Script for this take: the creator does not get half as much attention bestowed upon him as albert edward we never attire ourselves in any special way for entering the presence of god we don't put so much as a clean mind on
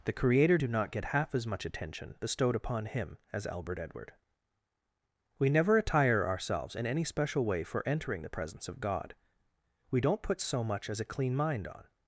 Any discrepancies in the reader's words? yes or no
yes